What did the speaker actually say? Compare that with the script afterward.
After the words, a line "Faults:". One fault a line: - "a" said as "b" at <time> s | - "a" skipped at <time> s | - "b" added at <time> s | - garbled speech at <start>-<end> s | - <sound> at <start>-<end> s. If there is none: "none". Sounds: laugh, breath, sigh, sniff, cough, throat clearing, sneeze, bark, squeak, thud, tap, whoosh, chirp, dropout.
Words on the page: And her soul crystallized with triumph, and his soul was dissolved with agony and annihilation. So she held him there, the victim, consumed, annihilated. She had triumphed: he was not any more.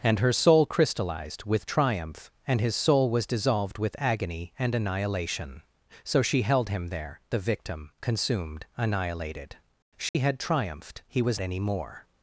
And her soul crystallized with triumph, and his soul was dissolved with agony and annihilation. So she held him there, the victim, consumed, annihilated. She had triumphed: he was any more.
Faults:
- dropout at 10.1-10.1 s
- "not" skipped at 11.4 s